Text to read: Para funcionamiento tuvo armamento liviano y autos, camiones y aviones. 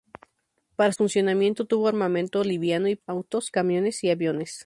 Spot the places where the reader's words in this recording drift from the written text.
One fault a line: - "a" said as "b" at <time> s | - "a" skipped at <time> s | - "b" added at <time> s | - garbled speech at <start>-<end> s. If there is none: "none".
none